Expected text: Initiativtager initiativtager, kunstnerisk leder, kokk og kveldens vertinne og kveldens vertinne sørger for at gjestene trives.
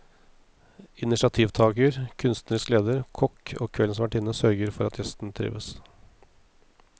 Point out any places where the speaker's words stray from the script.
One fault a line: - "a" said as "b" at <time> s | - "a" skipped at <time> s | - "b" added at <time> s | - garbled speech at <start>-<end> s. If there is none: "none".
- "initiativtager" skipped at 2.0 s
- "og kveldens vertinne" skipped at 4.3 s